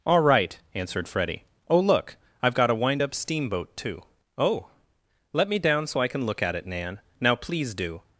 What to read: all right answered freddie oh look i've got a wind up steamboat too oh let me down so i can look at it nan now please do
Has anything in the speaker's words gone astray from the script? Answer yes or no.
no